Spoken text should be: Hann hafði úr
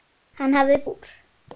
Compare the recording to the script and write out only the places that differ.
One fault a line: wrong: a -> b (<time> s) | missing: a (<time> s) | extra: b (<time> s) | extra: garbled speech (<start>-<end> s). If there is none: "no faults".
no faults